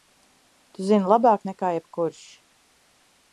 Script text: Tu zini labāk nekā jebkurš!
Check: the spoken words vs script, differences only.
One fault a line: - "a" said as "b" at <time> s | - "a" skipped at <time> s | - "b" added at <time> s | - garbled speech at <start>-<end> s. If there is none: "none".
none